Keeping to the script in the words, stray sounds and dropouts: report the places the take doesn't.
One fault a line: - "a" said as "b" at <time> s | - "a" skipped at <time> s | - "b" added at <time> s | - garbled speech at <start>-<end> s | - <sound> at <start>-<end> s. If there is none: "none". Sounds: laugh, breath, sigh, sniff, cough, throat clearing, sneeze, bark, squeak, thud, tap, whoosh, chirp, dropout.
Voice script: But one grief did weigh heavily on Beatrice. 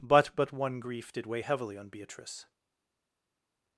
- "but" added at 0.3 s